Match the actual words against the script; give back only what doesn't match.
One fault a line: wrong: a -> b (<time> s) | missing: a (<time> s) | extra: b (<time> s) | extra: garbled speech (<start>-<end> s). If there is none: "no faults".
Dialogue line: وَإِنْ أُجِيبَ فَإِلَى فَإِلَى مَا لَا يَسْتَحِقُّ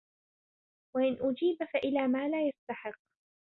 missing: فَإِلَى (2.1 s)